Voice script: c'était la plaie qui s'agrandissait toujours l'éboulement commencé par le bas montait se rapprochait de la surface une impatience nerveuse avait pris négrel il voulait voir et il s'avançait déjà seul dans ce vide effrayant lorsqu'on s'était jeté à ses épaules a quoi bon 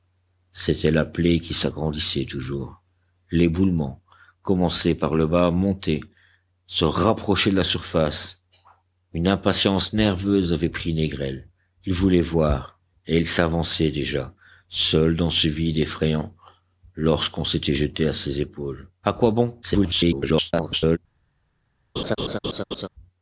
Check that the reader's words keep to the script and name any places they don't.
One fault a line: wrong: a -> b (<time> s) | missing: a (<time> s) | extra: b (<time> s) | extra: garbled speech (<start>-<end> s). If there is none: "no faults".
extra: garbled speech (19.6-21.0 s)